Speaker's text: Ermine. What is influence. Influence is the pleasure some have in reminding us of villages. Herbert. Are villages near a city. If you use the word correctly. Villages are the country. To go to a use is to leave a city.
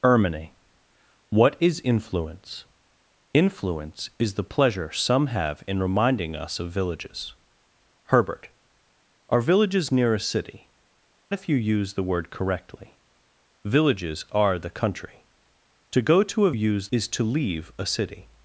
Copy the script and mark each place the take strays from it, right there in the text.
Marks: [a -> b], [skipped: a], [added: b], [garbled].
Ermine. What is influence. Influence is the pleasure some have in reminding us of villages. Herbert. Are villages near a city. If you use the word correctly. Villages are the country. To go to a use is to leave a city.